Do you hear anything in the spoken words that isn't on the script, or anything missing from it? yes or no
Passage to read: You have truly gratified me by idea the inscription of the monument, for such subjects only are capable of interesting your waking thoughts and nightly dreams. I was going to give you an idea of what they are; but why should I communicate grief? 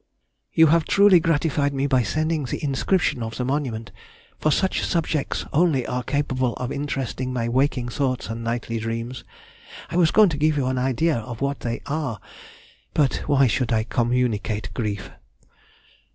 yes